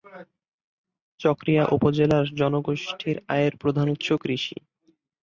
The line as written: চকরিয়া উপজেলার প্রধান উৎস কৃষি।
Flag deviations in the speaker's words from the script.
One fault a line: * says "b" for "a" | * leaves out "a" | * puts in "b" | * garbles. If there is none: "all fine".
* puts in "জনগোষ্ঠীর আয়ের"